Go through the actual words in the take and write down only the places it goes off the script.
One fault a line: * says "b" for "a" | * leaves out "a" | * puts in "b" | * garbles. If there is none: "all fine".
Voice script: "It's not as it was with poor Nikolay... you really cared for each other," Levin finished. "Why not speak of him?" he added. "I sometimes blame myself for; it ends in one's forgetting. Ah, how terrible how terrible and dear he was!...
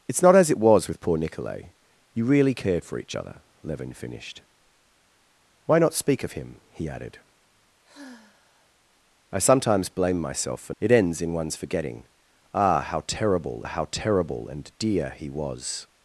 all fine